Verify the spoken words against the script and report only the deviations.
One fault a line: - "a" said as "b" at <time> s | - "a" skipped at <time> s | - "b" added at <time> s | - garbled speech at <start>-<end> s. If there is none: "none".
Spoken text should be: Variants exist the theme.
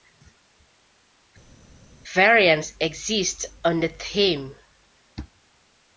- "on" added at 3.6 s